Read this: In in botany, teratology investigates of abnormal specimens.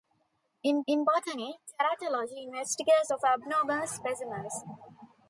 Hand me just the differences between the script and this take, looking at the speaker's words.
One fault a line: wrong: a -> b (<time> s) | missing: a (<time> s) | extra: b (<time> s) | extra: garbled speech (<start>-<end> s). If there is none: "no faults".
no faults